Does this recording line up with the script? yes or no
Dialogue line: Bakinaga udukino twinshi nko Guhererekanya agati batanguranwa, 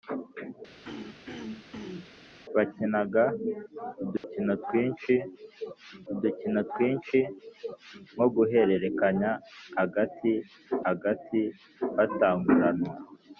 no